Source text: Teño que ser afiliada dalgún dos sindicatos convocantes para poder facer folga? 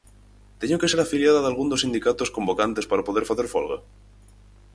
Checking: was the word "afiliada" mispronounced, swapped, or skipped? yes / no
no